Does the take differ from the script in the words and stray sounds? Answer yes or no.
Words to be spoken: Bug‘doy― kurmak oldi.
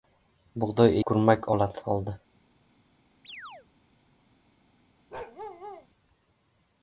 yes